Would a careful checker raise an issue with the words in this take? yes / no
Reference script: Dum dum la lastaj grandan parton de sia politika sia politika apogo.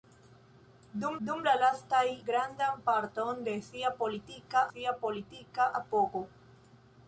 no